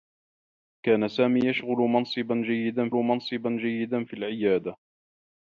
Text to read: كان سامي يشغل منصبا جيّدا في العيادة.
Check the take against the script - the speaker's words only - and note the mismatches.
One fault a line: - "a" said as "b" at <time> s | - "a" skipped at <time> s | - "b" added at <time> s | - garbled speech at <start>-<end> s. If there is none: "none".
- "منصبا جيّدا" added at 2.9 s